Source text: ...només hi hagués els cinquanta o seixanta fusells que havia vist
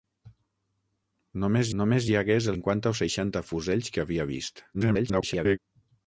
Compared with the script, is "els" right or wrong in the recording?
wrong